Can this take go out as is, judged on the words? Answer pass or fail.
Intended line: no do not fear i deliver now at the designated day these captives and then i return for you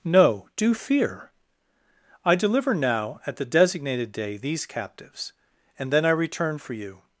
fail